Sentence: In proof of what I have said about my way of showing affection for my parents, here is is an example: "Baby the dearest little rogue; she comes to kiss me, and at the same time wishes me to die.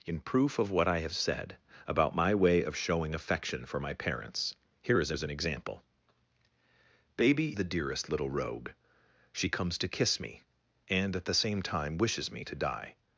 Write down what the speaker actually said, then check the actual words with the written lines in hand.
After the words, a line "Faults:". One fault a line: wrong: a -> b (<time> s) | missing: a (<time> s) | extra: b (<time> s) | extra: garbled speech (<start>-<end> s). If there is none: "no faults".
In proof of what I have said about my way of showing affection for my parents, here is is an example: "Baby the dearest little rogue; she comes to kiss me, and at the same time wishes me to die.
Faults:
no faults